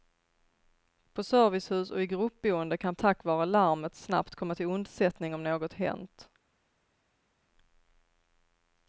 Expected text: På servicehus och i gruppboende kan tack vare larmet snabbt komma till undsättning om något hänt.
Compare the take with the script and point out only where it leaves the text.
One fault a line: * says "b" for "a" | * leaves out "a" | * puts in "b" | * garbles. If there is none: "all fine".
all fine